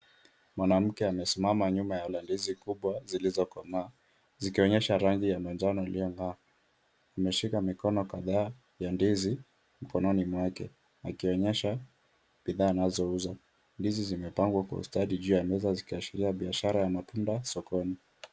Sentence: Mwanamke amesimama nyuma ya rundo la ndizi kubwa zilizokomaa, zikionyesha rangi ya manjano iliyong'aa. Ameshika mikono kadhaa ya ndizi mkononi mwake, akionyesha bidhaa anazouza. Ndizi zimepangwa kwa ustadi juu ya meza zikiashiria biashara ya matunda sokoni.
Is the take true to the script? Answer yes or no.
no